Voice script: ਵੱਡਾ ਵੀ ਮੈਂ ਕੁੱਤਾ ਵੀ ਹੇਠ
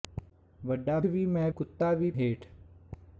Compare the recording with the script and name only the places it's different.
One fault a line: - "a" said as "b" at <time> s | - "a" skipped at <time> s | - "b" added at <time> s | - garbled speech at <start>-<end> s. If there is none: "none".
none